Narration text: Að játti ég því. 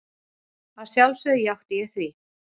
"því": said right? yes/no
yes